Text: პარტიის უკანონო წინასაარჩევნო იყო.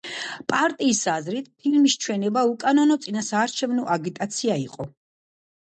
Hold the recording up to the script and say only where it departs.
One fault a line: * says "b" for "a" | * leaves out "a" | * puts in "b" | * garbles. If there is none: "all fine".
* puts in "აზრით ფილმის ჩვენება"
* puts in "აგიტაცია"